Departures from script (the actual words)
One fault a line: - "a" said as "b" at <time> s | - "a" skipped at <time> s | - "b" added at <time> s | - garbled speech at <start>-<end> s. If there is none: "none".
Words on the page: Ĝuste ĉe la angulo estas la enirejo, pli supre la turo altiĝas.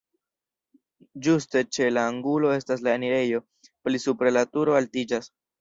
none